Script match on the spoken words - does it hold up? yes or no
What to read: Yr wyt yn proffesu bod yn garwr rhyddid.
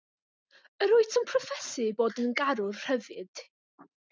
yes